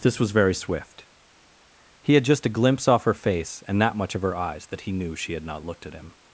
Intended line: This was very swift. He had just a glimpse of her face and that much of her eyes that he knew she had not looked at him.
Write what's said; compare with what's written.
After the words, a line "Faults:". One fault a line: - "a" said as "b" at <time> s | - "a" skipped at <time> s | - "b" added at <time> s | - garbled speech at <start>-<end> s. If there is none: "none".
This was very swift. He had just a glimpse off her face and that much of her eyes that he knew she had not looked at him.
Faults:
- "of" said as "off" at 2.9 s